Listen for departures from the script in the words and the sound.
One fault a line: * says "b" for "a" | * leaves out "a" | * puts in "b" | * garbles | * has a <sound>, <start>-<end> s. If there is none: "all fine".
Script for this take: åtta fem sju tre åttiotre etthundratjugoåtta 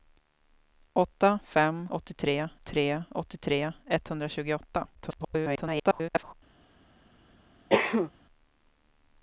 * says "åttiotre" for "sju"
* garbles
* has a cough, 7.7-8.1 s